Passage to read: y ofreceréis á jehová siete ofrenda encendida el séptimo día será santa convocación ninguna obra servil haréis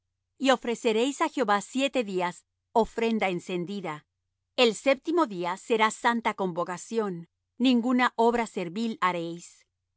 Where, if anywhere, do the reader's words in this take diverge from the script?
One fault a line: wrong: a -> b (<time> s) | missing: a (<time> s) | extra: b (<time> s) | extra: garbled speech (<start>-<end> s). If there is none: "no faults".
extra: días (2.1 s)